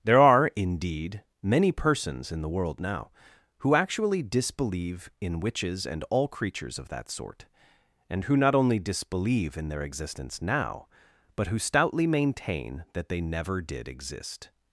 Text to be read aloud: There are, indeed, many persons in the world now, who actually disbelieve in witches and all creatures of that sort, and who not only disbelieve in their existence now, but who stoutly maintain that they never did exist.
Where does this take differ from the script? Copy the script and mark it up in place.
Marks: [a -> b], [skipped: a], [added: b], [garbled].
There are, indeed, many persons in the world now, who actually disbelieve in witches and all creatures of that sort, and who not only disbelieve in their existence now, but who stoutly maintain that they never did exist.